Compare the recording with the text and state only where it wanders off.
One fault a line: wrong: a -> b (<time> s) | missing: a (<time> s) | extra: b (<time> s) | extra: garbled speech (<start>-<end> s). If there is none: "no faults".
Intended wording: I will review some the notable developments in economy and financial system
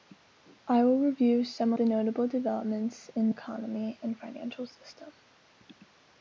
no faults